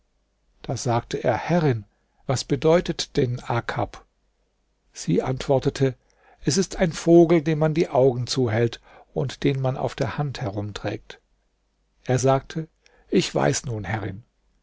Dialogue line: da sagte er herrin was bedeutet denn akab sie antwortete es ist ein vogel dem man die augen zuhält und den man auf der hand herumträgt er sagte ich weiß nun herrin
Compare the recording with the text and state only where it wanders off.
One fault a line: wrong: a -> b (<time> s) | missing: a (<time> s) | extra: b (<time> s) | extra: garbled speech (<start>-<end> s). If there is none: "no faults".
no faults